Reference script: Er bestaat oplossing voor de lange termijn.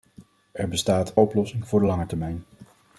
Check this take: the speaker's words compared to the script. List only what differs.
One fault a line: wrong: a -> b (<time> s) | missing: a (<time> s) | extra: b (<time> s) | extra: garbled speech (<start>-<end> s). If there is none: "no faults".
no faults